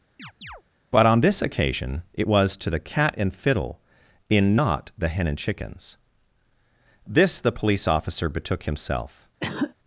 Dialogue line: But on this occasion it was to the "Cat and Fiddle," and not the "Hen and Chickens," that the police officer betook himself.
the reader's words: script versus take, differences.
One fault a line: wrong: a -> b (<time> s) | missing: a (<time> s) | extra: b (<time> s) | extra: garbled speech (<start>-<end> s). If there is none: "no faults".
wrong: and -> in (4.3 s)
wrong: that -> this (7.1 s)